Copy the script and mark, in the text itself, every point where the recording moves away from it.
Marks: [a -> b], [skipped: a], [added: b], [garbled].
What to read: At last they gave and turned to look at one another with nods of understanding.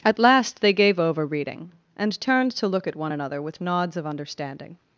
At last they gave [added: over reading] and turned to look at one another with nods of understanding.